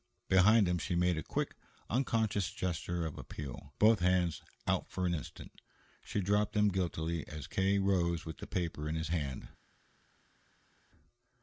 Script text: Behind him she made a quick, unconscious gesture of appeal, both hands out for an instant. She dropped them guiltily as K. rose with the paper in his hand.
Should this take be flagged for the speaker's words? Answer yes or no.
no